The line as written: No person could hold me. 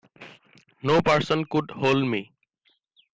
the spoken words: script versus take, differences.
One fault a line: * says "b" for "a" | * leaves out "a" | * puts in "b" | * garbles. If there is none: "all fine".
all fine